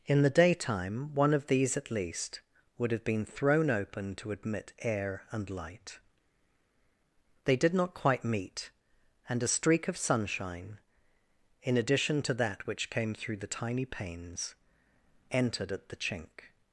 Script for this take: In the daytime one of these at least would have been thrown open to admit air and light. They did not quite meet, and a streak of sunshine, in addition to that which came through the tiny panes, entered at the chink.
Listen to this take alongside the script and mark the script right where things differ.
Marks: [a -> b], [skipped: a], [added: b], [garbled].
In the daytime one of these at least would have been thrown open to admit air and light. They did not quite meet, and a streak of sunshine, in addition to that which came through the tiny panes, entered at the chink.